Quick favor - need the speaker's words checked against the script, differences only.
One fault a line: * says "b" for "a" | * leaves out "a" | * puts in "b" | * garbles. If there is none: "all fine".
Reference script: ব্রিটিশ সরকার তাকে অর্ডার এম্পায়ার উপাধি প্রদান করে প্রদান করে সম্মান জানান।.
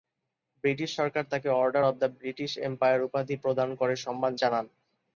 * puts in "অব দ্য ব্রিটিশ"
* leaves out "প্রদান করে"